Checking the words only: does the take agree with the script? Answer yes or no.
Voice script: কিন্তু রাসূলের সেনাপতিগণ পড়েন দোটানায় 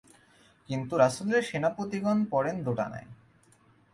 yes